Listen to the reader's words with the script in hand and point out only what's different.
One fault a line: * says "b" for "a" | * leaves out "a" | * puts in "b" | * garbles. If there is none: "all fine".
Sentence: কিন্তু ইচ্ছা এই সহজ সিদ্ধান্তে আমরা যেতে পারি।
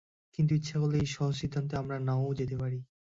* puts in "করলে"
* puts in "না-ও"